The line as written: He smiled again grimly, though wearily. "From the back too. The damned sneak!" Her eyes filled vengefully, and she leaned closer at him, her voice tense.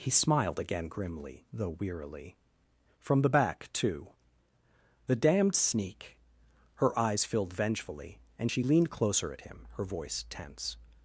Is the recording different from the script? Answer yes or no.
no